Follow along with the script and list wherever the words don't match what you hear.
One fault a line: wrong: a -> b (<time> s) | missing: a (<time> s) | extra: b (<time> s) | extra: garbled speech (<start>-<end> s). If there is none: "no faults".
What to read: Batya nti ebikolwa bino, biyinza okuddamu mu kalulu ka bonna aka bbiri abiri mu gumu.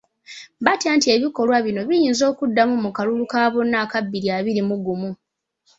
no faults